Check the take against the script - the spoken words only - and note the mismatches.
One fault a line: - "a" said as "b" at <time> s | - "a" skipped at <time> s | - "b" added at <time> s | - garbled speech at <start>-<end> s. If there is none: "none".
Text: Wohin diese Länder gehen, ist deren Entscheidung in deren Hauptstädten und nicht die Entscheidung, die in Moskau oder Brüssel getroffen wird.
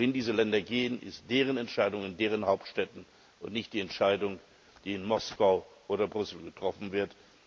none